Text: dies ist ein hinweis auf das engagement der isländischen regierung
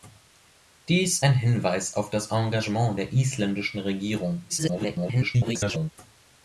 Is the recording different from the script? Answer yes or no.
yes